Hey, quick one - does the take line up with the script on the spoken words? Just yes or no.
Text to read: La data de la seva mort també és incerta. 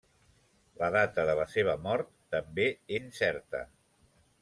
no